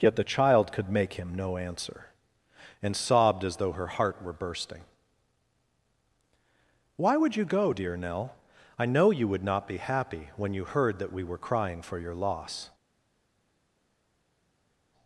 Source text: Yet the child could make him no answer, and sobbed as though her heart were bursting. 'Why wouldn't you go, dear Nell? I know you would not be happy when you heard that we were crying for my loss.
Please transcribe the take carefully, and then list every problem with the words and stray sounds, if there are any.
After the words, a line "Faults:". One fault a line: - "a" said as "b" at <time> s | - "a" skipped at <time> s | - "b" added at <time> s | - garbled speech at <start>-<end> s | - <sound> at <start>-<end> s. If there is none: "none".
Yet the child could make him no answer, and sobbed as though her heart were bursting. 'Why would you go, dear Nell? I know you would not be happy when you heard that we were crying for your loss.
Faults:
- "wouldn't" said as "would" at 7.2 s
- "my" said as "your" at 12.0 s